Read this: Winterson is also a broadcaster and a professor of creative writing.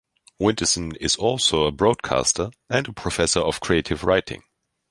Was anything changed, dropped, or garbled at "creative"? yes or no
no